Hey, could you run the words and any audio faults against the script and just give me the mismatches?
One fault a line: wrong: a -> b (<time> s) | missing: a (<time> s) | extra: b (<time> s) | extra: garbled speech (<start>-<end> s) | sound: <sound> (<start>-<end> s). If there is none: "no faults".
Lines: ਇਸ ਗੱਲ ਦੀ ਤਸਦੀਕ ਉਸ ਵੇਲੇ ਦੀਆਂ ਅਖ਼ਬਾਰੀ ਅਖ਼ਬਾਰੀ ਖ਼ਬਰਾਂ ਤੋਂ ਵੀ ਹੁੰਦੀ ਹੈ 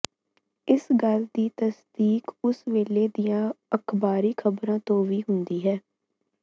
missing: ਅਖ਼ਬਾਰੀ (4.3 s)